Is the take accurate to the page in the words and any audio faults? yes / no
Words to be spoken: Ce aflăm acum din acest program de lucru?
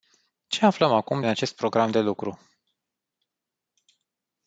no